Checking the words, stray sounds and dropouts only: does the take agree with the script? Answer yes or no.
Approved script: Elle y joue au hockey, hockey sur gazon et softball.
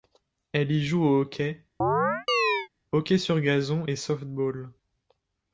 no